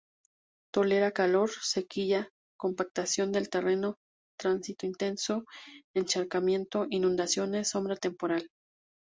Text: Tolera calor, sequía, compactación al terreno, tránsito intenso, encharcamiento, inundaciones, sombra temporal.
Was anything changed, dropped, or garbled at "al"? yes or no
yes